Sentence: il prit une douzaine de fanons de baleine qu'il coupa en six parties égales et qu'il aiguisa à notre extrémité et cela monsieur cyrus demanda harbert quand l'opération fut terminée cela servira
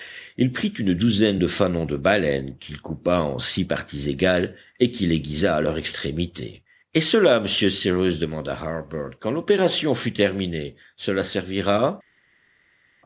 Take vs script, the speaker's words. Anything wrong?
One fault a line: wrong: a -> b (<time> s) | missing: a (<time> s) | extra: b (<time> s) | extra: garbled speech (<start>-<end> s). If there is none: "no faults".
wrong: notre -> leur (5.6 s)